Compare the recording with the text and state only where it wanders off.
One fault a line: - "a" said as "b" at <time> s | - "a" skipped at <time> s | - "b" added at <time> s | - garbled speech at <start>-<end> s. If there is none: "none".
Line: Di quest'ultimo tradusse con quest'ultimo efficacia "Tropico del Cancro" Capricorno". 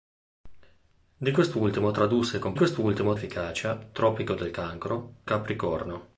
none